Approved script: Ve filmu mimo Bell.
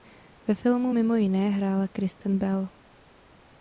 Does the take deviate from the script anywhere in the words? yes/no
yes